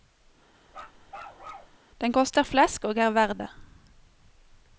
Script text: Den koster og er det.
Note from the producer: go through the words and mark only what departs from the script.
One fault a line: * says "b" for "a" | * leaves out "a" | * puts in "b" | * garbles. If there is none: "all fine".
* puts in "flesk"
* puts in "verd"